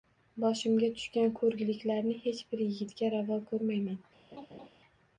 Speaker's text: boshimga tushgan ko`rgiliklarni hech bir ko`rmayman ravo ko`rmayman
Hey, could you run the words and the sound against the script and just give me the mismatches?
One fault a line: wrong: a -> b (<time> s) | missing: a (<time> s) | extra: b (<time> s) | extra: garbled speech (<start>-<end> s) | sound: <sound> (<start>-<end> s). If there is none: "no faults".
wrong: ko`rmayman -> yigitga (2.7 s)
sound: laugh (4.3-4.7 s)